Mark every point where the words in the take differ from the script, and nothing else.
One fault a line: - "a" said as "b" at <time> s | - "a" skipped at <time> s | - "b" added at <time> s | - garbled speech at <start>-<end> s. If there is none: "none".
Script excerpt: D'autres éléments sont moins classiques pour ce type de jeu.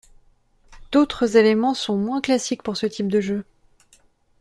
none